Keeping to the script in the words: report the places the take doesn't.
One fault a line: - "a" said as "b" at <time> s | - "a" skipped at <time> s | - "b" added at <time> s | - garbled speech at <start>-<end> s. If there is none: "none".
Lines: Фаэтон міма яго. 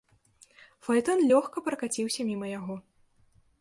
- "лёгка пракаціўся" added at 1.3 s